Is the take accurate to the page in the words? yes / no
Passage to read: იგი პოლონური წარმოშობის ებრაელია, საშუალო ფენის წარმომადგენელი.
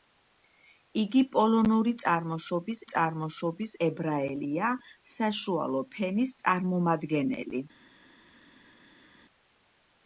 no